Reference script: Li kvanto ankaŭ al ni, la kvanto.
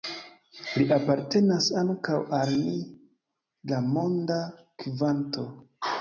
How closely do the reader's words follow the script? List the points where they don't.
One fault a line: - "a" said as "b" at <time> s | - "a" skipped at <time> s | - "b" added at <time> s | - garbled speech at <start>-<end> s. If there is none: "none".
- "kvanto" said as "apartenas" at 0.9 s
- "monda" added at 3.9 s